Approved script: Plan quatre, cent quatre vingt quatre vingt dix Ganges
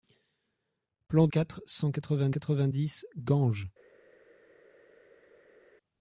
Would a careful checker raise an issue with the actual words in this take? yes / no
no